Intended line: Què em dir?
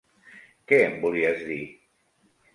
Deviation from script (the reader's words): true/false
true